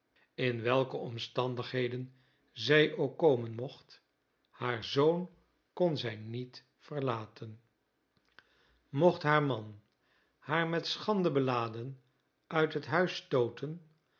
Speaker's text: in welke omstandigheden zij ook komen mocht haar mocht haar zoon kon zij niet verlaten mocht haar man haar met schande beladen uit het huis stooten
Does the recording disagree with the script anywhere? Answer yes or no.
yes